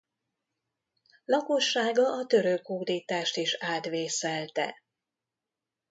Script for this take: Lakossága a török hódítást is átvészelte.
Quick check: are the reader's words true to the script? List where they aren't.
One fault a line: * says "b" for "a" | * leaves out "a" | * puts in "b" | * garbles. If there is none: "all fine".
all fine